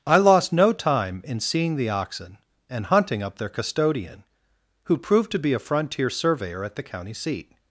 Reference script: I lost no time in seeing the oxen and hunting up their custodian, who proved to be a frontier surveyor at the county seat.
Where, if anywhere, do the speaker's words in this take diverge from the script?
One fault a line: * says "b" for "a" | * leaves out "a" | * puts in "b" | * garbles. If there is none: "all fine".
all fine